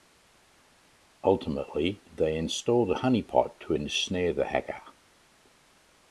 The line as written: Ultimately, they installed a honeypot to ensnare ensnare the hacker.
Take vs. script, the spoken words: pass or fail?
fail